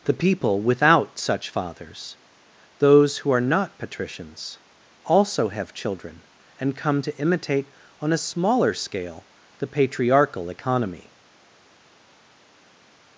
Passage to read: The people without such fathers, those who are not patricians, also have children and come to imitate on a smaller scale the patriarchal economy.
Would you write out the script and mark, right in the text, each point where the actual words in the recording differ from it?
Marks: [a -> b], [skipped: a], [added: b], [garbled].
The people without such fathers, those who are not patricians, also have children and come to imitate on a smaller scale the patriarchal economy.